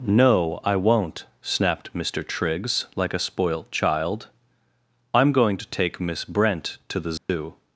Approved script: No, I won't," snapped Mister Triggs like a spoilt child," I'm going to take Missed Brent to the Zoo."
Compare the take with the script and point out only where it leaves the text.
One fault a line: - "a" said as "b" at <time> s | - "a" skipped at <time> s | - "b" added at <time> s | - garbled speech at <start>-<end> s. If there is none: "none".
- "Missed" said as "Miss" at 6.0 s